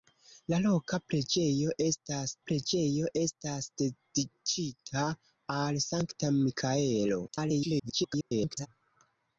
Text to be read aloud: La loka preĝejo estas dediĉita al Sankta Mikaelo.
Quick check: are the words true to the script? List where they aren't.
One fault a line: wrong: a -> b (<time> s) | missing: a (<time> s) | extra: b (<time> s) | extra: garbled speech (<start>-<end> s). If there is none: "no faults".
extra: preĝejo estas (2.5 s)
extra: garbled speech (7.3-8.7 s)